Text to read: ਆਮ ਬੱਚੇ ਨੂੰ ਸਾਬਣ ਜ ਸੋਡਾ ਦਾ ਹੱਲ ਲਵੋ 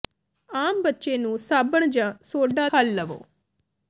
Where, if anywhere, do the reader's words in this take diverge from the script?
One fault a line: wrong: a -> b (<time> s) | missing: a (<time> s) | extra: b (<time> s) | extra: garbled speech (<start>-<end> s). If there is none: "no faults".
missing: ਦਾ (2.7 s)